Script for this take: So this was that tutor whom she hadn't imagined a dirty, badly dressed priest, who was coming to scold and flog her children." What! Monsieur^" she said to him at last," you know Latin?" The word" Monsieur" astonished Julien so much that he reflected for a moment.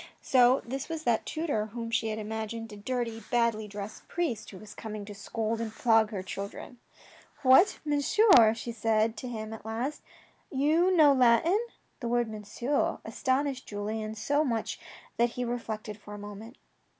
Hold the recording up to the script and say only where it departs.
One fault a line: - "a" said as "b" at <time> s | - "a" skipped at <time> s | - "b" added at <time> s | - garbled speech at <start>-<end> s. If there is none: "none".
- "hadn't" said as "had" at 2.1 s